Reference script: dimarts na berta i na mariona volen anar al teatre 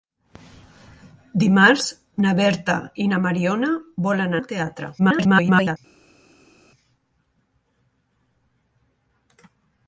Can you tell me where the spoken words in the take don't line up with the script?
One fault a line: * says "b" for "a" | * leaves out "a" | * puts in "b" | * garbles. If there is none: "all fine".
* leaves out "anar"
* garbles